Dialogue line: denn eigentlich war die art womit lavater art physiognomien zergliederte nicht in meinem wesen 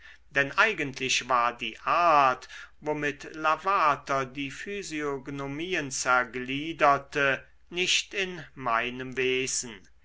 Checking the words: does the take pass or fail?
fail